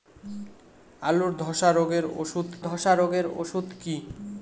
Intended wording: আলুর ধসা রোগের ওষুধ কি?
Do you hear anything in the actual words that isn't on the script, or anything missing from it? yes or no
yes